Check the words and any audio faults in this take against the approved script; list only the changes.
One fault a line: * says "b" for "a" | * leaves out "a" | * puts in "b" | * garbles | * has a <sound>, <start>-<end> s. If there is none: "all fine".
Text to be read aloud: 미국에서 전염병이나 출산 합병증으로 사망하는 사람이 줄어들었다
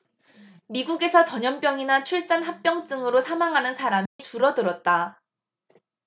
* has a dropout, 4.1-4.2 s